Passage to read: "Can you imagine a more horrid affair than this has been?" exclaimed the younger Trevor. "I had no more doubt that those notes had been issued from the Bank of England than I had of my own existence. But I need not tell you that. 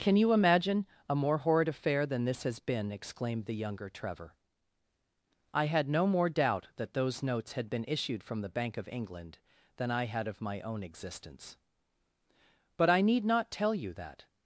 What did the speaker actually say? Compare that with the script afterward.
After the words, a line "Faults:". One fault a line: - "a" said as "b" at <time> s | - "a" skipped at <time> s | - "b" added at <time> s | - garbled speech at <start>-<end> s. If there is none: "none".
"Can you imagine a more horrid affair than this has been?" exclaimed the younger Trevor. "I had no more doubt that those notes had been issued from the Bank of England than I had of my own existence. But I need not tell you that.
Faults:
none